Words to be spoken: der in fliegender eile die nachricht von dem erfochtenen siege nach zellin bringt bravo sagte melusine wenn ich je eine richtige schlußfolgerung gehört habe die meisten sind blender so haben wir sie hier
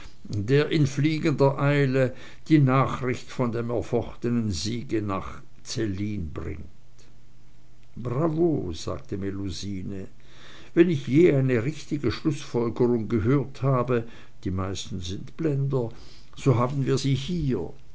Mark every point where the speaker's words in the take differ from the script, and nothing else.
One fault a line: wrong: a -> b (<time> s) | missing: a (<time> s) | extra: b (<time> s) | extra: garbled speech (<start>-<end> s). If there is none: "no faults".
no faults